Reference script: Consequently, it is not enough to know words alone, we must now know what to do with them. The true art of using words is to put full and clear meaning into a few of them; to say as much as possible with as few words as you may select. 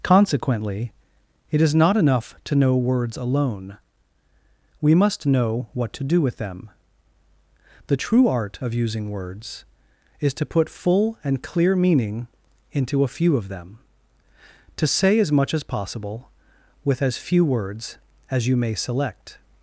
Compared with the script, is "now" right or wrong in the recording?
wrong